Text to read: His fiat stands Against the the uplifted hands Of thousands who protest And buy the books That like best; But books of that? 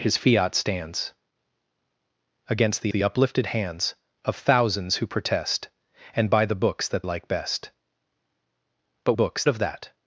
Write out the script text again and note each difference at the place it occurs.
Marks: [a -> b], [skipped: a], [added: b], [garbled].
His fiat stands Against the the uplifted hands Of thousands who protest And buy the books That like best; But books of that?